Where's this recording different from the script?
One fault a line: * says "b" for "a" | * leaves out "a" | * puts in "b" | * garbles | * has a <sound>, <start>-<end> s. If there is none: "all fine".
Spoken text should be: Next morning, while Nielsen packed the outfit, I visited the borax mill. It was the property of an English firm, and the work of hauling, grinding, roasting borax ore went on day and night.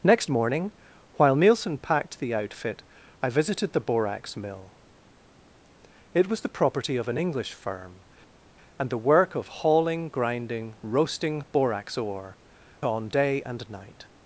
* leaves out "went"